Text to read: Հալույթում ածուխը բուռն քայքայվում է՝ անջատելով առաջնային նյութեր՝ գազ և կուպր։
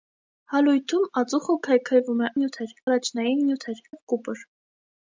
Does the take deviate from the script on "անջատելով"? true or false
true